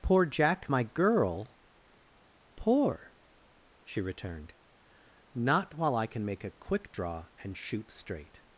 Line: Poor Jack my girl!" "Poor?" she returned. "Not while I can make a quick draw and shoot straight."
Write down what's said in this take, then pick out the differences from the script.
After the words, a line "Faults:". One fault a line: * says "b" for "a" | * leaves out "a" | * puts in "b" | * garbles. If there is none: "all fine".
Poor Jack my girl!" "Poor?" she returned. "Not while I can make a quick draw and shoot straight."
Faults:
all fine